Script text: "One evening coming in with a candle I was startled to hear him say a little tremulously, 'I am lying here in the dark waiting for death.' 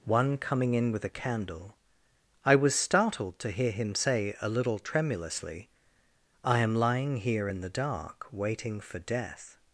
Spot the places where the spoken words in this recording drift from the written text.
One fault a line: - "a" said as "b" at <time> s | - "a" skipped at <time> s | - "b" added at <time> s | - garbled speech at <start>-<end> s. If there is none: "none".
- "evening" skipped at 0.4 s